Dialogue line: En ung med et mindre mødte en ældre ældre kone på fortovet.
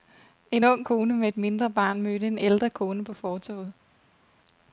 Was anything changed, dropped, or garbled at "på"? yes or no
no